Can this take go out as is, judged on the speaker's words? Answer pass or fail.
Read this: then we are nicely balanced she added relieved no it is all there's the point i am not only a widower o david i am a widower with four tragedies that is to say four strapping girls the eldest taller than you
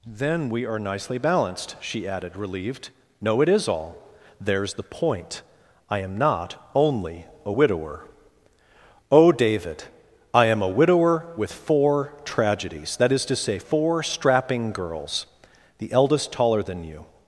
pass